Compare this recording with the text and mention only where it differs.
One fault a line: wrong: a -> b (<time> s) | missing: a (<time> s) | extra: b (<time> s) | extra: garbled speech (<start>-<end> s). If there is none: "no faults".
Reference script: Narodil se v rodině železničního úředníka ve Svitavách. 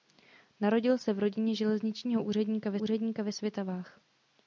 extra: úředníka ve (2.8 s)